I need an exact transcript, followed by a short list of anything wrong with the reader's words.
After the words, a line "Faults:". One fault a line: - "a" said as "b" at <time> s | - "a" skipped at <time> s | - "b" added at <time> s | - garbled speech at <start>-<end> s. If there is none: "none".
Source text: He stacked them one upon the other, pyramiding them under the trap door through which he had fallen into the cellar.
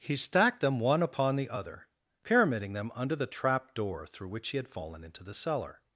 He stacked them one upon the other, pyramiding them under the trap door through which he had fallen into the cellar.
Faults:
none